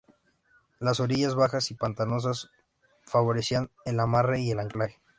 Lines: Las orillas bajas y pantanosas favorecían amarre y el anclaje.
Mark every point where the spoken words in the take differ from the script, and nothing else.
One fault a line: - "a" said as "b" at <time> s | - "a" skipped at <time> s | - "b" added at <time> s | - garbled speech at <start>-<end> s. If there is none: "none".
- "el" added at 3.8 s